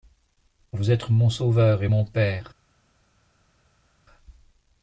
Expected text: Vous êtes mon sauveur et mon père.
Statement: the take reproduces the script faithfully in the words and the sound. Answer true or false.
true